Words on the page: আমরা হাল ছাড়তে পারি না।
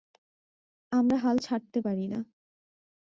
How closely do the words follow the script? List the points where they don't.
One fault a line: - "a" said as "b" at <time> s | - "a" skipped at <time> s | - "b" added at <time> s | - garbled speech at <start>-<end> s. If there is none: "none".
none